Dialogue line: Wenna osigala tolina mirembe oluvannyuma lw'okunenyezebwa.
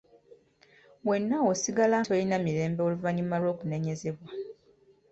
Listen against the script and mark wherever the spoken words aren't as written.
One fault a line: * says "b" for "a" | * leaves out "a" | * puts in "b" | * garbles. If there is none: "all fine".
all fine